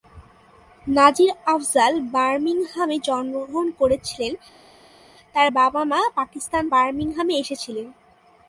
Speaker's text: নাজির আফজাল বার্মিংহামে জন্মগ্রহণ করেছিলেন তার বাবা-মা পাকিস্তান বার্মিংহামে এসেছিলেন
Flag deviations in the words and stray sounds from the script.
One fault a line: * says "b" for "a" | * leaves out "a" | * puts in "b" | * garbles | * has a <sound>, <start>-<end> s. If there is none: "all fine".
all fine